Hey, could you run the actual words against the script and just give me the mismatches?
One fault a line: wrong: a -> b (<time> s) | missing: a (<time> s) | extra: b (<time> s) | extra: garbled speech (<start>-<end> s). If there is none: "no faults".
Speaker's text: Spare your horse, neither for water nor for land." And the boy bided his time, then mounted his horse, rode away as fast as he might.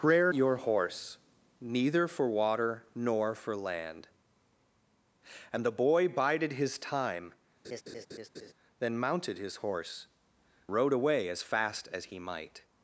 no faults